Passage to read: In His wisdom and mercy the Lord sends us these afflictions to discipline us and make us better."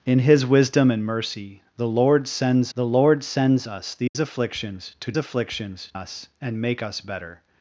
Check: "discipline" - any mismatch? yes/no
yes